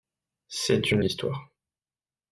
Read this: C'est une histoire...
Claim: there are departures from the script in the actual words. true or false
false